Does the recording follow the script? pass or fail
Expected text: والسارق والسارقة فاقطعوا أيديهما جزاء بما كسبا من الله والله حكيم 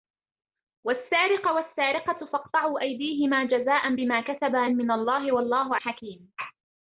pass